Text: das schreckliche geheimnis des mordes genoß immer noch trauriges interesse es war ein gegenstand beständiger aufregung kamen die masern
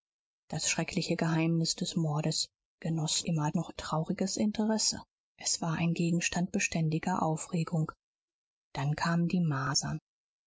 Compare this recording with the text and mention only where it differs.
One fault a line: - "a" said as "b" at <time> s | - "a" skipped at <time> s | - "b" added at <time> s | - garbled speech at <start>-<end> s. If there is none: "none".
- "dann" added at 8.7 s